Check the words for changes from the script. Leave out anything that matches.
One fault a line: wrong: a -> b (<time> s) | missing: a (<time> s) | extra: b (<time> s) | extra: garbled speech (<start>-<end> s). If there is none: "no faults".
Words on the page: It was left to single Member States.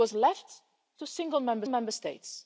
extra: Member (1.7 s)